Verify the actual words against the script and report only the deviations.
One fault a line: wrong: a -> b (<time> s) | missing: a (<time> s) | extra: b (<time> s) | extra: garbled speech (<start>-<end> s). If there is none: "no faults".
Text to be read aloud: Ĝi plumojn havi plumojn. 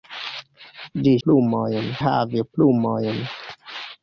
no faults